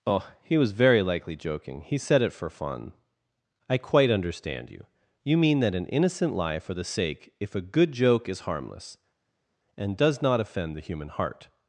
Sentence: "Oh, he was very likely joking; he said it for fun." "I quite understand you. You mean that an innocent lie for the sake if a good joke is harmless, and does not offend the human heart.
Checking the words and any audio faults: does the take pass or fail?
pass